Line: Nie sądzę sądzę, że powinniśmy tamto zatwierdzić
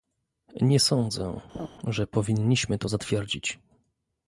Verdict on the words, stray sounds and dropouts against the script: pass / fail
fail